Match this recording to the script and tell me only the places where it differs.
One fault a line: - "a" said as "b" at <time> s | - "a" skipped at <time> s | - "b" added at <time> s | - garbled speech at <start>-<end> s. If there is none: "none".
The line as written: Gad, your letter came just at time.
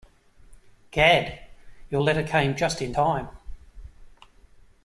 - "at" said as "in" at 2.8 s